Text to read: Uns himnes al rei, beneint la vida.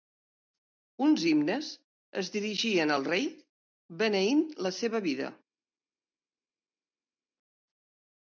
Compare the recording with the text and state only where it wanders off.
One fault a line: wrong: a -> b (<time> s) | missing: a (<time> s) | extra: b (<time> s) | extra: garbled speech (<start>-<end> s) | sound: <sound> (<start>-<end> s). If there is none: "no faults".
extra: es dirigien (2.2 s)
extra: seva (4.8 s)